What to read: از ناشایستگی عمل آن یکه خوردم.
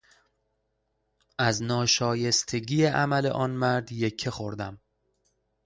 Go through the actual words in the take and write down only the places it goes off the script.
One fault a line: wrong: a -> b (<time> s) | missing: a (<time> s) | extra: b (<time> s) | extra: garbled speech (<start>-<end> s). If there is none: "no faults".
extra: مرد (3.5 s)